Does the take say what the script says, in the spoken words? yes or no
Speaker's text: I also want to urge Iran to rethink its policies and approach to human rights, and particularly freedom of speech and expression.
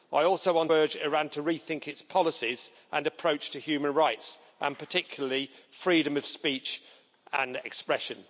no